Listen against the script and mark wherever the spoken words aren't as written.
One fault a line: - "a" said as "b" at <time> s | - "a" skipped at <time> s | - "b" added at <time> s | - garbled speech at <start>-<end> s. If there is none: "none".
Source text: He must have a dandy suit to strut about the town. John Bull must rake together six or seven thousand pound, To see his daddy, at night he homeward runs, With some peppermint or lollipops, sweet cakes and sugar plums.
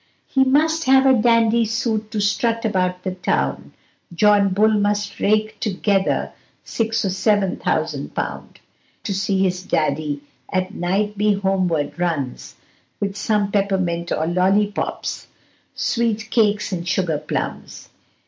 none